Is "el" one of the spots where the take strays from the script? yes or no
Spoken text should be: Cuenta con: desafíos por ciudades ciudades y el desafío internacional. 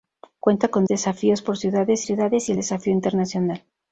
no